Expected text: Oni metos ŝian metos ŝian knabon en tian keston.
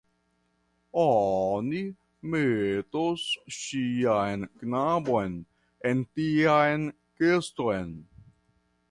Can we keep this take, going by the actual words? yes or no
no